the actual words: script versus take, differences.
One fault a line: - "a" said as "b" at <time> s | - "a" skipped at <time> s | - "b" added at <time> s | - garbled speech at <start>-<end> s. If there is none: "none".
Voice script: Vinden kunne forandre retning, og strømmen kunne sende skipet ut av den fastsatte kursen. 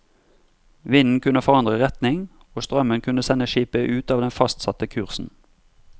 none